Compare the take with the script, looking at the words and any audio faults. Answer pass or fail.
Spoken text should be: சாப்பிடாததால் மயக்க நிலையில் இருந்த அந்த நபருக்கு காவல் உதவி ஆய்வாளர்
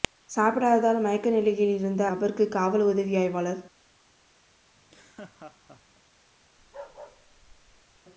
fail